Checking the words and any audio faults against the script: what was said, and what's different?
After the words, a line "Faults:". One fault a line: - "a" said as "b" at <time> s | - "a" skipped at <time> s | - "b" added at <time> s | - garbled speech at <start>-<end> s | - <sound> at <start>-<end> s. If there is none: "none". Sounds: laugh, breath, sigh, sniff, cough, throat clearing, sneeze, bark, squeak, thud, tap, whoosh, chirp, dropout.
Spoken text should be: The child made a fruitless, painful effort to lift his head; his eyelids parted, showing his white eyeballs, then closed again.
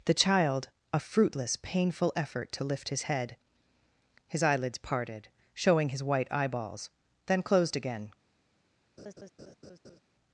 The child a fruitless, painful effort to lift his head; his eyelids parted, showing his white eyeballs, then closed again.
Faults:
- "made" skipped at 0.7 s
- laugh at 9.0-10.0 s